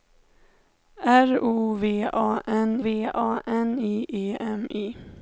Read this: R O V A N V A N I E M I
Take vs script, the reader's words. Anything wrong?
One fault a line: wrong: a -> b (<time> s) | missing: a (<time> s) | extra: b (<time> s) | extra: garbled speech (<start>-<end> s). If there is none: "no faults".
no faults